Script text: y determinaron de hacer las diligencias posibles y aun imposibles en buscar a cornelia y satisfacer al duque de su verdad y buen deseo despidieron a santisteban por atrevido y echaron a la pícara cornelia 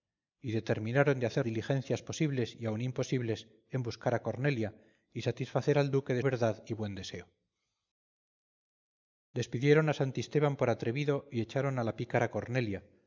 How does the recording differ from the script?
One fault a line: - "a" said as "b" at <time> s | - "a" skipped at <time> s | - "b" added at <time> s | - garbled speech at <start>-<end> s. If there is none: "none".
- "las" skipped at 1.4 s
- "su" skipped at 6.2 s